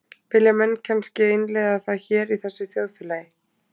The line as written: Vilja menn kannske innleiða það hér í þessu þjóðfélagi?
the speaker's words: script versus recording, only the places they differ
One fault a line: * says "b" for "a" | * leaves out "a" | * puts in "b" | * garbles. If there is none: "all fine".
all fine